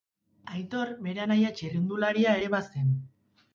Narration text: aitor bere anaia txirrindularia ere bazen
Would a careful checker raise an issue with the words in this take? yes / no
no